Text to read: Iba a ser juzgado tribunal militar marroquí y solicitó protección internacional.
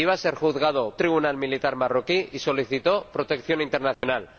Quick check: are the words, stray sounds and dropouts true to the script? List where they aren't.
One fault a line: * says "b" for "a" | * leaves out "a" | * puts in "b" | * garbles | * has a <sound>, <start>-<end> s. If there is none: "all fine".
* has a dropout, 3.9-4.0 s